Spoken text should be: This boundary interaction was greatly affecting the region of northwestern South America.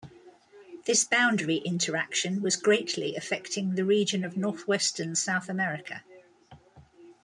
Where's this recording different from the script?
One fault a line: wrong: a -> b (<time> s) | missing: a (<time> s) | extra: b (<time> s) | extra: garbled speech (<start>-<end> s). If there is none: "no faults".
no faults